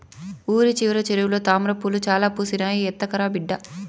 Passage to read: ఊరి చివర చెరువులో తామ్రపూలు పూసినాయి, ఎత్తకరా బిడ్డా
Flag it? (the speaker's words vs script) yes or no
yes